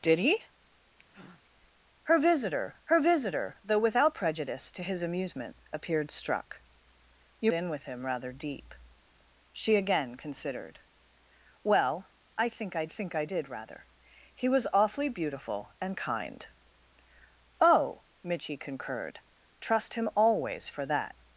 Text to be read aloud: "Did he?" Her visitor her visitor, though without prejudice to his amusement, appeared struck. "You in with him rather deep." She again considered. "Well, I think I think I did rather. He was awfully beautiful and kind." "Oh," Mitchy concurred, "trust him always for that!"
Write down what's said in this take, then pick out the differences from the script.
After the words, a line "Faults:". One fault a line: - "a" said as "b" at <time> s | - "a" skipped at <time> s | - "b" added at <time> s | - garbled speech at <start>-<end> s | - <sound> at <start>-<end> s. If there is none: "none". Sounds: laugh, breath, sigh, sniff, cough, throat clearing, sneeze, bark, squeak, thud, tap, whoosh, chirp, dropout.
"Did he?" Her visitor her visitor, though without prejudice to his amusement, appeared struck. "You in with him rather deep." She again considered. "Well, I think I think I did rather. He was awfully beautiful and kind." "Oh," Mitchy concurred, "trust him always for that!"
Faults:
- breath at 1.1-1.4 s